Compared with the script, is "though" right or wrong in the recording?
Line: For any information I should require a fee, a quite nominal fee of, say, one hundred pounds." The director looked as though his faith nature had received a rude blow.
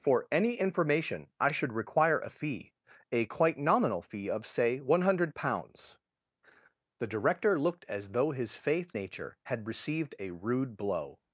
right